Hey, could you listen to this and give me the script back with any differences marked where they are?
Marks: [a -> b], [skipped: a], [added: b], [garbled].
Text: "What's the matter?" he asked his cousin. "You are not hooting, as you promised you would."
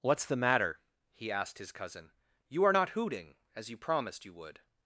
"What's the matter?" he asked his cousin. "You are not hooting, as you promised you would."